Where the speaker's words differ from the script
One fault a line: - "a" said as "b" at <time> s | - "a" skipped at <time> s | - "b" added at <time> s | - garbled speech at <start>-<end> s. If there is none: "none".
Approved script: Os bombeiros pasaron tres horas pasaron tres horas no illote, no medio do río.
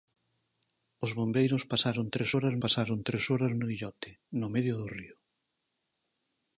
none